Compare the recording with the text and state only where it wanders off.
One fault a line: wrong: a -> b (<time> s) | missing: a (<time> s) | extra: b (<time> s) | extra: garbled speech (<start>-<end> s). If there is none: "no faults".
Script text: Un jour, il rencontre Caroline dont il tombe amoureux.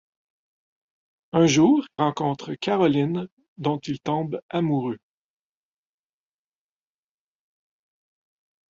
missing: il (1.9 s)